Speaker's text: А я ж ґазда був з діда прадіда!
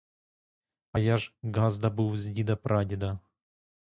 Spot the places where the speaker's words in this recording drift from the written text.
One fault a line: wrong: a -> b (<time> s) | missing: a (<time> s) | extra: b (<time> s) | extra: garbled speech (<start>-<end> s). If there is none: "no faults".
no faults